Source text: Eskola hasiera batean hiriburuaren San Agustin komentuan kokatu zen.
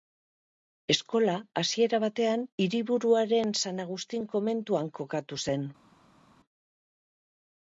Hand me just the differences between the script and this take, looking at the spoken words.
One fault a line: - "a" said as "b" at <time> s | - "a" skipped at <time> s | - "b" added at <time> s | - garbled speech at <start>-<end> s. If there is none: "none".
none